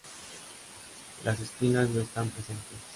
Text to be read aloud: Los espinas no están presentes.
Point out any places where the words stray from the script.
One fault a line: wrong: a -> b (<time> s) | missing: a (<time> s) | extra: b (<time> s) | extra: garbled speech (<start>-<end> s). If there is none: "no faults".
wrong: Los -> Las (1.2 s)